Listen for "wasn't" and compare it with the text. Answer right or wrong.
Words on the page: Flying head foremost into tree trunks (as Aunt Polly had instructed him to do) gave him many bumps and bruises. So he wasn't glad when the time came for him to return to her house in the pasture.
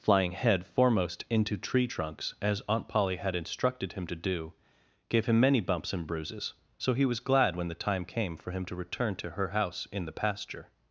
wrong